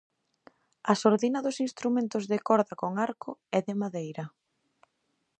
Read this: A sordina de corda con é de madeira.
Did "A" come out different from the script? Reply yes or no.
no